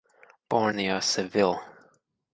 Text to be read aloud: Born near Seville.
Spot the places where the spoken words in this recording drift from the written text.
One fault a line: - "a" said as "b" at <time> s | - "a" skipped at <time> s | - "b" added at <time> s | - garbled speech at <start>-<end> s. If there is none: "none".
none